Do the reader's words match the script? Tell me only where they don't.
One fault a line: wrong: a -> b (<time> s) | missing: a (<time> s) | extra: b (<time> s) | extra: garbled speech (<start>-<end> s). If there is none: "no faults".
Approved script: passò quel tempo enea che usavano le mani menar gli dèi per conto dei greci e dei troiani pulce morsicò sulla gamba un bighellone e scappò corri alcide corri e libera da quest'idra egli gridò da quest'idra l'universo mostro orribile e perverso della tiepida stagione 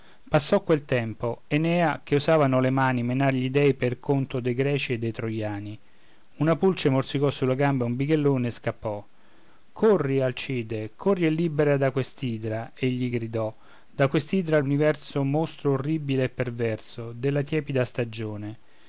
extra: una (6.4 s)